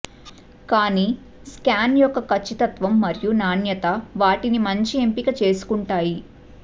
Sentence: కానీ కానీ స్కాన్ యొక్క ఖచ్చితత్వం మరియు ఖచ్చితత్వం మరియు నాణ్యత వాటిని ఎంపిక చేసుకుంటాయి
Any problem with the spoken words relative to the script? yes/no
yes